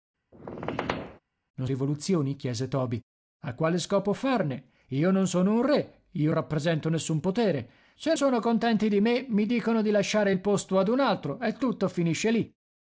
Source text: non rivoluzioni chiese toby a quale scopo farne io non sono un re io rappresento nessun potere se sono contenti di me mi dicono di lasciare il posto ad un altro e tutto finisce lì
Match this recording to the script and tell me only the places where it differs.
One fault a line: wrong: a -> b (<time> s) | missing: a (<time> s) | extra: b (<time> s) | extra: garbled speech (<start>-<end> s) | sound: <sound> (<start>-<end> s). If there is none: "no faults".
sound: squeak (0.3-1.2 s)